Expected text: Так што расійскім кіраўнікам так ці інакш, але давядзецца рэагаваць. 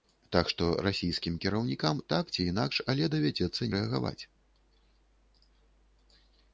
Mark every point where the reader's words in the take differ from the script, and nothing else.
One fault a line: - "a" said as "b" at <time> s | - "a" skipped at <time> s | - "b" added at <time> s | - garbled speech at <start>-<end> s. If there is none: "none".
none